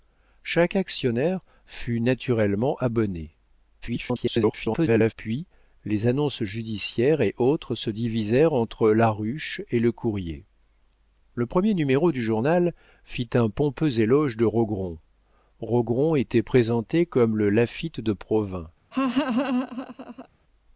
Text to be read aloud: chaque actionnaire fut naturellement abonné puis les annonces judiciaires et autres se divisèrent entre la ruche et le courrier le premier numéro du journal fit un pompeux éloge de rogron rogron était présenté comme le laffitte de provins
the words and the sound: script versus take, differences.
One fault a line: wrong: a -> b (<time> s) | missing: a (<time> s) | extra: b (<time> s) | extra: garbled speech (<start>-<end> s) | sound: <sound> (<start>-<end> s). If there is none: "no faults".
extra: garbled speech (3.8-5.1 s)
sound: laugh (18.9-20.3 s)